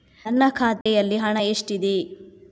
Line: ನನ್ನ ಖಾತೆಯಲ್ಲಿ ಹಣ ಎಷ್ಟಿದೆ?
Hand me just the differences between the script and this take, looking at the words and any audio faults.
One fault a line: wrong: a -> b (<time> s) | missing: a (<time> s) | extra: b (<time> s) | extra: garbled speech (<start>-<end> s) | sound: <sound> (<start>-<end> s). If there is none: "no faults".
sound: dropout (0.8-0.9 s)